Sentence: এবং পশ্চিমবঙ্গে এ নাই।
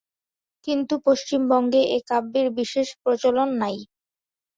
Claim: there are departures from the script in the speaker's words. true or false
true